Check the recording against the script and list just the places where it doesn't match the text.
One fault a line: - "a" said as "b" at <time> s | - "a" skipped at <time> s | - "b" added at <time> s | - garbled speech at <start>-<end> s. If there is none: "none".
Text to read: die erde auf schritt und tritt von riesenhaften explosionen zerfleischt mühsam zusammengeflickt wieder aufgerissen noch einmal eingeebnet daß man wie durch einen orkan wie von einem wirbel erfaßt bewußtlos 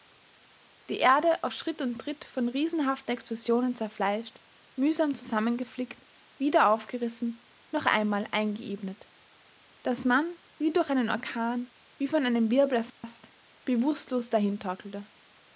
none